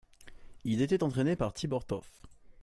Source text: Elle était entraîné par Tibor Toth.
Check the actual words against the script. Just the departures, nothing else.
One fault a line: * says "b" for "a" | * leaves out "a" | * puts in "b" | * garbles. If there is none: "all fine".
* says "Il" for "Elle"